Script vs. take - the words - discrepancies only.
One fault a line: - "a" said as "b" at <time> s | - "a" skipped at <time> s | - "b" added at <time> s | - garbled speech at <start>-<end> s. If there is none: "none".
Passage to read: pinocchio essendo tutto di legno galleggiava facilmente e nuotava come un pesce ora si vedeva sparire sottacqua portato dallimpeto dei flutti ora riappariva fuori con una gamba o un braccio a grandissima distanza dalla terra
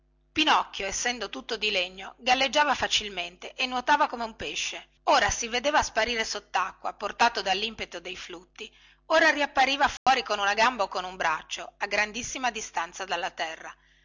- "con" added at 10.9 s